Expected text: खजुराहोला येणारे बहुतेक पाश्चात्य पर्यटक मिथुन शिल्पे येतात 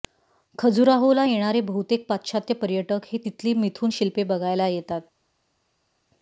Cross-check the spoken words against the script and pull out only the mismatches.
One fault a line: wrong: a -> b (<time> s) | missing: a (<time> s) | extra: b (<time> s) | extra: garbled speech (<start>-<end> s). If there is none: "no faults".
extra: हे तिथली (3.1 s)
extra: बघायला (4.2 s)